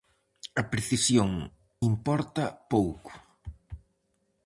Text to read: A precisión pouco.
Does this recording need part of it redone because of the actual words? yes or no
yes